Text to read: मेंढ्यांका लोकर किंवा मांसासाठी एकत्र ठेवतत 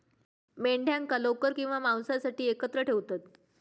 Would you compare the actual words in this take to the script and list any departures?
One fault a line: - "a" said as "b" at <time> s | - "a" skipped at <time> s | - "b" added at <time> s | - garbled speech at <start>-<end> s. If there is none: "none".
none